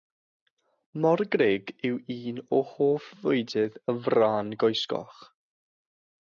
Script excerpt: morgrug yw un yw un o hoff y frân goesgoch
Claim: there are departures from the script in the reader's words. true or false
true